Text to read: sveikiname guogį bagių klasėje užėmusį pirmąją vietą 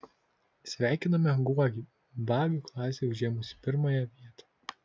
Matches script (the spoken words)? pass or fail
pass